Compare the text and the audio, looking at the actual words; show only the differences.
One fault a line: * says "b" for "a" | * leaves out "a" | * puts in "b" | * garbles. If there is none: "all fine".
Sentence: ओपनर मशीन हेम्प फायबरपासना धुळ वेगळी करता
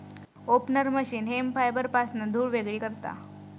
all fine